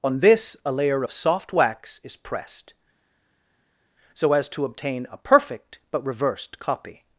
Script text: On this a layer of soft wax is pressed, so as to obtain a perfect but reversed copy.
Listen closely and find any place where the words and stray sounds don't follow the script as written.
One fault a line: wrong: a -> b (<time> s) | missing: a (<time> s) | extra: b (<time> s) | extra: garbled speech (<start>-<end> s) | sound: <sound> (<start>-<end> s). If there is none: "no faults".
no faults